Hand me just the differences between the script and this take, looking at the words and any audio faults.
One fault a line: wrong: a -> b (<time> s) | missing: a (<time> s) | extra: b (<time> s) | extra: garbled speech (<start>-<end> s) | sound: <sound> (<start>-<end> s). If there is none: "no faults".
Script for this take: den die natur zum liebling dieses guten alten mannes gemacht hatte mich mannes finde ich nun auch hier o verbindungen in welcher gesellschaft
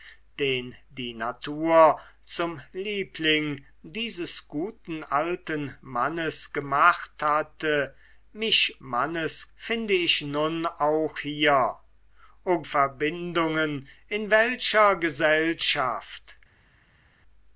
no faults